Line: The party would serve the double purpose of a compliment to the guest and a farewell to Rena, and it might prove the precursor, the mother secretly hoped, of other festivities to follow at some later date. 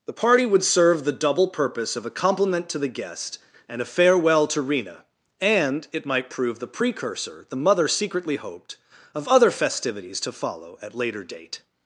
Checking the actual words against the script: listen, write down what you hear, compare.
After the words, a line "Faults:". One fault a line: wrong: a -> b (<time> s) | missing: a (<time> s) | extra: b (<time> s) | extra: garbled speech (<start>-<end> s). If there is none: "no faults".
The party would serve the double purpose of a compliment to the guest and a farewell to Rena, and it might prove the precursor, the mother secretly hoped, of other festivities to follow at later date.
Faults:
missing: some (10.9 s)